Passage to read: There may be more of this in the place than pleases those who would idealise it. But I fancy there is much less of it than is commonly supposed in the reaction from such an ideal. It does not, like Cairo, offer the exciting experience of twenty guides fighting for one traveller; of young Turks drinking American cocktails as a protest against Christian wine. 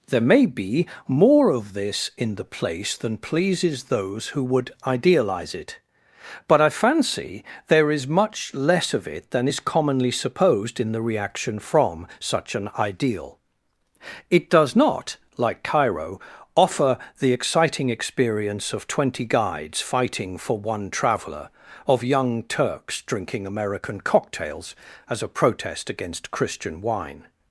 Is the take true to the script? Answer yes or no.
yes